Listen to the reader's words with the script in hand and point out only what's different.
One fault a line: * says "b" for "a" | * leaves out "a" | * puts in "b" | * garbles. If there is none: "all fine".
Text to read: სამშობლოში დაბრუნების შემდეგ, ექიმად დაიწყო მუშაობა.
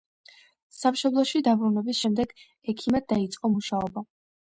all fine